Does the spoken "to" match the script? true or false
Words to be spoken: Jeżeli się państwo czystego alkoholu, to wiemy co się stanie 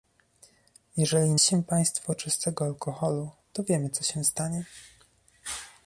true